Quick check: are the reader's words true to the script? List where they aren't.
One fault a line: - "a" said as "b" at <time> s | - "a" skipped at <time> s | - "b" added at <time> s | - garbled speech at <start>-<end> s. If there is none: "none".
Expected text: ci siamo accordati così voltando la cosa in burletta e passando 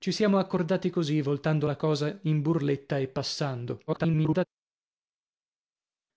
- garbled speech at 3.9-4.5 s